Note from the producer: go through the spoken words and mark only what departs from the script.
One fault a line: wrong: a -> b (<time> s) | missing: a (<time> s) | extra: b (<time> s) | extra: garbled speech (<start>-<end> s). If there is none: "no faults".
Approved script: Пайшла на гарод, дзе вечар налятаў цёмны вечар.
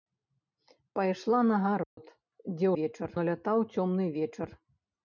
no faults